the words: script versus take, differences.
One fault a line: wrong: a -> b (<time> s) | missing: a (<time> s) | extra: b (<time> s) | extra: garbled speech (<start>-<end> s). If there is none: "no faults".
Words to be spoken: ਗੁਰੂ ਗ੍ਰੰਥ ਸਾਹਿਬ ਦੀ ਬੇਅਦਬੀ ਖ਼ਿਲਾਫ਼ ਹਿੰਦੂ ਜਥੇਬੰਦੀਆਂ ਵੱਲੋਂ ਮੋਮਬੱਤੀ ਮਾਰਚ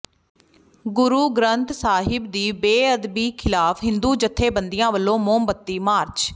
no faults